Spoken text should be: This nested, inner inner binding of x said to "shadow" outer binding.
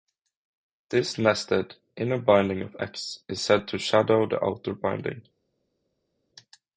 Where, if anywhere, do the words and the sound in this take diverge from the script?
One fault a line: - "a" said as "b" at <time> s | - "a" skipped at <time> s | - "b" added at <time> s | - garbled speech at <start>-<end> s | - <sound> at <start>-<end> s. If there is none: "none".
- "inner" skipped at 2.2 s
- "is" added at 3.3 s
- "the" added at 4.3 s